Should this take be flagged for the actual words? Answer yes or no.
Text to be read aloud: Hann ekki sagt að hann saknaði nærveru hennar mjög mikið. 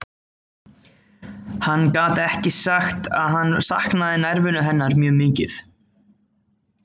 yes